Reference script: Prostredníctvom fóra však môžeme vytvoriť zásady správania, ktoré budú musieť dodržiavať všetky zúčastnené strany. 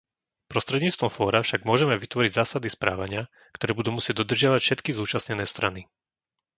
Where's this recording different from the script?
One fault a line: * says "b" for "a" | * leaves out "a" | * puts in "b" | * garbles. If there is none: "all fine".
all fine